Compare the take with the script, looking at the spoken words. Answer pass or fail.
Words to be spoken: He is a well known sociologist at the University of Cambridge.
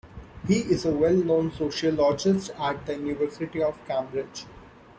pass